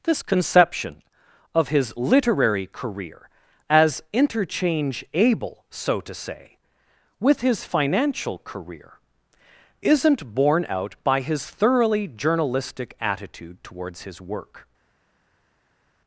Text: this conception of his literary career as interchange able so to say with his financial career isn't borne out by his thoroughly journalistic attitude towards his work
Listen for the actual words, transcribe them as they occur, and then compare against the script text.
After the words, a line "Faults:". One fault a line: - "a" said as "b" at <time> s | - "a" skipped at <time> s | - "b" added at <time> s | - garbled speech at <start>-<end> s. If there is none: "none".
this conception of his literary career as interchange able so to say with his financial career isn't borne out by his thoroughly journalistic attitude towards his work
Faults:
none